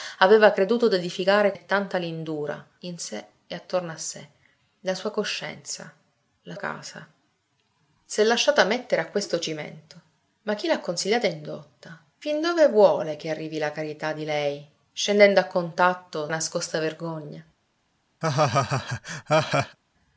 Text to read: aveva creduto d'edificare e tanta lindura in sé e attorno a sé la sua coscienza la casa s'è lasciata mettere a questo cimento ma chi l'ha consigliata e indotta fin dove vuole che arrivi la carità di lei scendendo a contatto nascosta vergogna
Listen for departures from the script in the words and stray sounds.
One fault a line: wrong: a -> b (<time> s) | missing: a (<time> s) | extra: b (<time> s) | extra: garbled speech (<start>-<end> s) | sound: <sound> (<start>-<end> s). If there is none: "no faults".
sound: laugh (18.2-19.8 s)